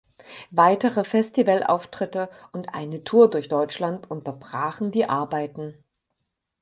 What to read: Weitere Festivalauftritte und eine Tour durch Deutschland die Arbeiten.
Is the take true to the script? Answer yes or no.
no